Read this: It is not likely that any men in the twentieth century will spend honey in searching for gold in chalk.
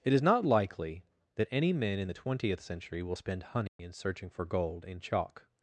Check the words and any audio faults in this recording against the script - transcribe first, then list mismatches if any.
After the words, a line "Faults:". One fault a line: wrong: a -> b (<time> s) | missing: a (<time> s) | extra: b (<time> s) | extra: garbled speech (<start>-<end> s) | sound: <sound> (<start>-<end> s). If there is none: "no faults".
It is not likely that any men in the twentieth century will spend honey in searching for gold in chalk.
Faults:
sound: dropout (3.7-3.8 s)